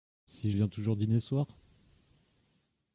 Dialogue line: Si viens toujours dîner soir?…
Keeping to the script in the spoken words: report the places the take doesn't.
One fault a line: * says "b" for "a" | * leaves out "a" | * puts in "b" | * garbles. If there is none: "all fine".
all fine